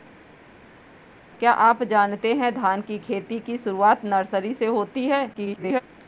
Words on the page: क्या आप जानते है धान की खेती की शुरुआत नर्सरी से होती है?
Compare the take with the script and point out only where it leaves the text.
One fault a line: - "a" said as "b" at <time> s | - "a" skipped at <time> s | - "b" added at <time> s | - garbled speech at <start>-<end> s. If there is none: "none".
- garbled speech at 5.3-5.8 s